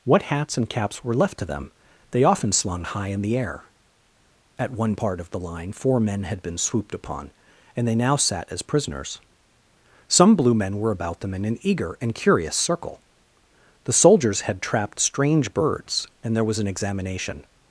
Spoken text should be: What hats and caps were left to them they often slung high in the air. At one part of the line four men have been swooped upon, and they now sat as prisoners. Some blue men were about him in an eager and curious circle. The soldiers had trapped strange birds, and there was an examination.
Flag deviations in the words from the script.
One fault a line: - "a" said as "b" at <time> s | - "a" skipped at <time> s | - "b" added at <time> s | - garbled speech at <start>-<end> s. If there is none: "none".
- "have" said as "had" at 6.2 s
- "him" said as "them" at 11.2 s